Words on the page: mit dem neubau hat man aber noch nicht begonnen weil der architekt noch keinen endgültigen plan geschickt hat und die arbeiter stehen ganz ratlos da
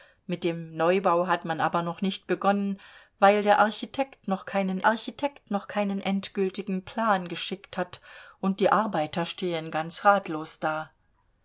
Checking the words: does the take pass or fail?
fail